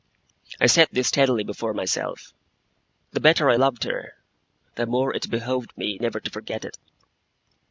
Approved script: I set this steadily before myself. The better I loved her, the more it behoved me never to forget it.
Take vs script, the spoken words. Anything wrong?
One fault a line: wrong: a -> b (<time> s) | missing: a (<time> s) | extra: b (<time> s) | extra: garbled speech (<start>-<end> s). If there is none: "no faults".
no faults